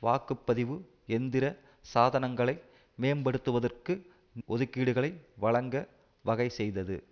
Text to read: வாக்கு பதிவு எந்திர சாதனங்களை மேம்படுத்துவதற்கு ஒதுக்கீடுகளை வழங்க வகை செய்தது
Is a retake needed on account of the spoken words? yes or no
no